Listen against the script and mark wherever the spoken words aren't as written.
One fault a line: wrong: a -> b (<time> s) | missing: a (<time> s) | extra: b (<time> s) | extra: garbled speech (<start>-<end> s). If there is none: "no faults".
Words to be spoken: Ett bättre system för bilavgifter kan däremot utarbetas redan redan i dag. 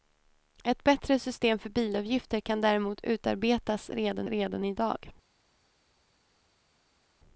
no faults